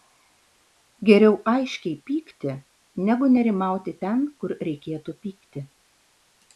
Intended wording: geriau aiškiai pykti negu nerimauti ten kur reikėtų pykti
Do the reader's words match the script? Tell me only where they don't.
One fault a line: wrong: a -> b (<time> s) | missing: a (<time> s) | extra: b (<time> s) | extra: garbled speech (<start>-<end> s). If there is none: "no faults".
no faults